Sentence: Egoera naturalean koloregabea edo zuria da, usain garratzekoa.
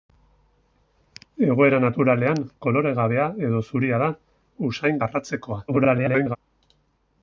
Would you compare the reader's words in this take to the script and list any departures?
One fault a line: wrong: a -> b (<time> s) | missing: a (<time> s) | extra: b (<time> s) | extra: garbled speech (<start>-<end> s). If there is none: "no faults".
extra: garbled speech (5.7-6.4 s)